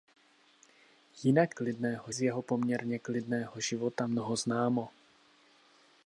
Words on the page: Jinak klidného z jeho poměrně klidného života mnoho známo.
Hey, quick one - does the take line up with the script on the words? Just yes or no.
yes